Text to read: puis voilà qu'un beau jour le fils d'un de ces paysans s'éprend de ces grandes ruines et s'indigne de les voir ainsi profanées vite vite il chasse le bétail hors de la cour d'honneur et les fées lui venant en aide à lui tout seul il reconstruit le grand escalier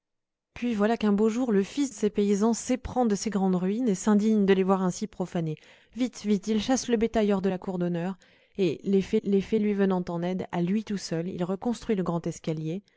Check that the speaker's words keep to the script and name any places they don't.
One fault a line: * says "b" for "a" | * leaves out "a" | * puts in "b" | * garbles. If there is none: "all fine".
* leaves out "d'un"
* puts in "les fées"